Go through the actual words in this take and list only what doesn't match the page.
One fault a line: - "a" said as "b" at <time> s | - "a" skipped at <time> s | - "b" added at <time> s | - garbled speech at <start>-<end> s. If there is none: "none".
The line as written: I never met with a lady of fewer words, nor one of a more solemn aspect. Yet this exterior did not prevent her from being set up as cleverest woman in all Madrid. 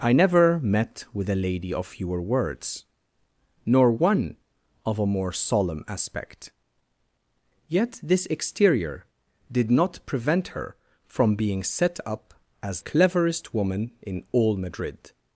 none